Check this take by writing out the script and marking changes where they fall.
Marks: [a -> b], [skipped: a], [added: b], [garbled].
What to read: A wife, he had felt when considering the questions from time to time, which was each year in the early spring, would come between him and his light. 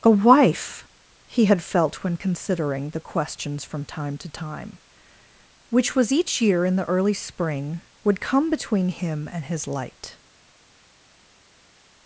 A wife, he had felt when considering the questions from time to time, which was each year in the early spring, would come between him and his light.